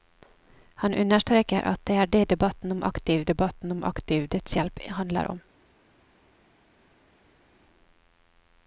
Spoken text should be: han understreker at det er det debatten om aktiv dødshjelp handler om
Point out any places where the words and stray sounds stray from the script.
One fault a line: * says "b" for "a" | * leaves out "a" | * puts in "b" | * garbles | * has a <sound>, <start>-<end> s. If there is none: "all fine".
* puts in "debatten om aktiv"